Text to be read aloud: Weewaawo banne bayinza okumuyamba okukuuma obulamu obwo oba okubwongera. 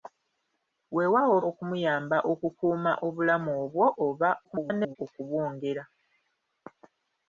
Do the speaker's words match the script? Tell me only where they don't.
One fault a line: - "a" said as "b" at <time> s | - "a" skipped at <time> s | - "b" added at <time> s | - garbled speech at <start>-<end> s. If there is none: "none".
- "banne bayinza" skipped at 1.4 s
- garbled speech at 4.4-5.0 s